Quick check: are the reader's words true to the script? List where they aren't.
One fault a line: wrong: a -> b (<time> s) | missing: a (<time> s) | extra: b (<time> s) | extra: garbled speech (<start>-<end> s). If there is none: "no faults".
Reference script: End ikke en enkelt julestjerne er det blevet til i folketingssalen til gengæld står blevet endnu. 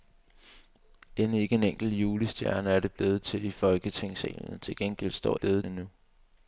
no faults